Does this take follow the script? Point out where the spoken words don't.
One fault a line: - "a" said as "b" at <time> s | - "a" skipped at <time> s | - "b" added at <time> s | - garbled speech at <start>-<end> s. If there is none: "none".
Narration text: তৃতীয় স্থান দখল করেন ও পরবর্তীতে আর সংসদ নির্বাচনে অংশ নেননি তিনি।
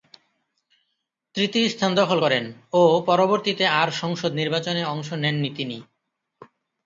none